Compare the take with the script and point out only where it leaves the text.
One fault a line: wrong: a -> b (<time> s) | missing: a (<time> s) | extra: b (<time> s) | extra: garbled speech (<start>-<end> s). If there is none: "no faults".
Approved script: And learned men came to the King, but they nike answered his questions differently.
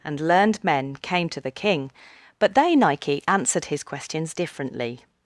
no faults